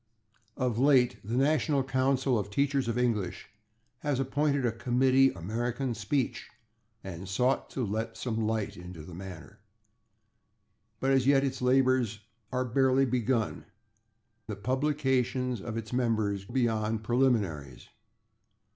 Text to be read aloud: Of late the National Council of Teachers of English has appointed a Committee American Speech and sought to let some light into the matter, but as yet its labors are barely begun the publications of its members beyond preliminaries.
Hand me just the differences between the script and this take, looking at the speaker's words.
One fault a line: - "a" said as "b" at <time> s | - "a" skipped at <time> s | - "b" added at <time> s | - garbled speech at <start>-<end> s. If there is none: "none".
none